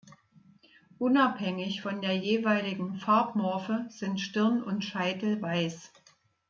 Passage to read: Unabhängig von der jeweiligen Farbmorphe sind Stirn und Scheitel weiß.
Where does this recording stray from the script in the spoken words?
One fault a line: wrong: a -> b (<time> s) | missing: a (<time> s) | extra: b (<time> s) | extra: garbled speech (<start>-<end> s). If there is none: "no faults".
no faults